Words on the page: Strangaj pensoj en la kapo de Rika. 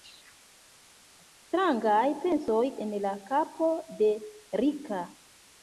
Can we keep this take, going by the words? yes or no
yes